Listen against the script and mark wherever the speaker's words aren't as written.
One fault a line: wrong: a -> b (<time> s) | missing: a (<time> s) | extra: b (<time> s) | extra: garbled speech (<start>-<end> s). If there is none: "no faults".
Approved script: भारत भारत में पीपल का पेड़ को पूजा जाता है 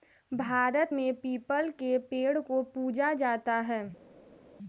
missing: भारत (0.9 s)
wrong: का -> के (1.8 s)